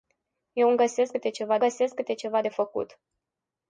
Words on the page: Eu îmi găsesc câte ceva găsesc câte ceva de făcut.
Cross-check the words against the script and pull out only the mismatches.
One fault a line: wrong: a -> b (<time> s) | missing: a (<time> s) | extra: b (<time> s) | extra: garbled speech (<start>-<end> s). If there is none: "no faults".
no faults